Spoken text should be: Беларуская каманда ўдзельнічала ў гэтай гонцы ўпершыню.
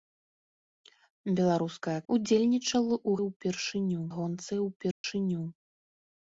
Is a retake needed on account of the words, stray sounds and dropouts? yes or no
yes